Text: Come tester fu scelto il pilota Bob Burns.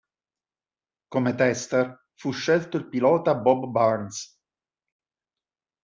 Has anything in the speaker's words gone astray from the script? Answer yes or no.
no